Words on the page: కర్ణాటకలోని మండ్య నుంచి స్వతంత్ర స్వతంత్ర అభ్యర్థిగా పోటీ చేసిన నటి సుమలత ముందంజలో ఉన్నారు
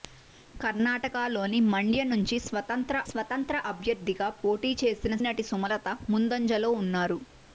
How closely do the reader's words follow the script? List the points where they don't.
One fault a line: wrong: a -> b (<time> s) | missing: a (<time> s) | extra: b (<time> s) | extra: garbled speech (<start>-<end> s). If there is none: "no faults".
no faults